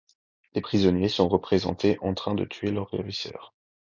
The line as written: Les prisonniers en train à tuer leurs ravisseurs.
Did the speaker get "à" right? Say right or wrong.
wrong